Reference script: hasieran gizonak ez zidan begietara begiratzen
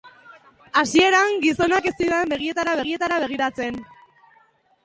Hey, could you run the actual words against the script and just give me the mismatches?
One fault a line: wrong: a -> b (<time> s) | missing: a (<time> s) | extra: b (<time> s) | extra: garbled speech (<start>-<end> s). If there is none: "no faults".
extra: begietara (2.8 s)